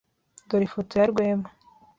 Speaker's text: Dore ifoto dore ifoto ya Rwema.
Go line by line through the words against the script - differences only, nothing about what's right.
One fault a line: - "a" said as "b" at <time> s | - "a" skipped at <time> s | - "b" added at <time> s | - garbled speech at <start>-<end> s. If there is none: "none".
- "dore ifoto" skipped at 0.9 s